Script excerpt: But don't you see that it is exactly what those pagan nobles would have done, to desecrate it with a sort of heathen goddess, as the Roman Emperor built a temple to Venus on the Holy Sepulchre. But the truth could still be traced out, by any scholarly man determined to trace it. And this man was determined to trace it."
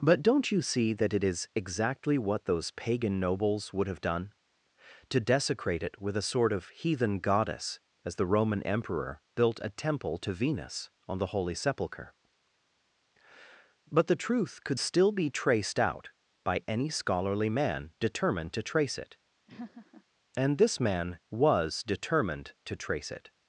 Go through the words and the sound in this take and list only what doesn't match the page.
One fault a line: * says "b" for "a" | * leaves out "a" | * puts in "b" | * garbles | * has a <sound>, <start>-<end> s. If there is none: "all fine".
* has a laugh, 19.5-20.0 s